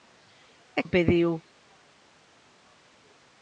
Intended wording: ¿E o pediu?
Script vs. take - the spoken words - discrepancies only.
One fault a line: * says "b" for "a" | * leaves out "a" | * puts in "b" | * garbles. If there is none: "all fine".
all fine